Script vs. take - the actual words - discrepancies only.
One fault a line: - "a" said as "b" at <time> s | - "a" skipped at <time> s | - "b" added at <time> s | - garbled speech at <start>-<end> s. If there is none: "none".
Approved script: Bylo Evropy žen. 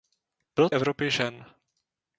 none